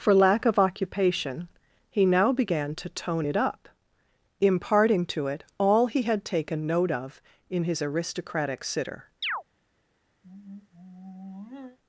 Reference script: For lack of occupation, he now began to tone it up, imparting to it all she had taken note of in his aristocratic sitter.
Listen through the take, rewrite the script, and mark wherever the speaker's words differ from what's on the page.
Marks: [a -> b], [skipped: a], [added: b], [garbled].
For lack of occupation, he now began to tone it up, imparting to it all [she -> he] had taken note of in his aristocratic sitter.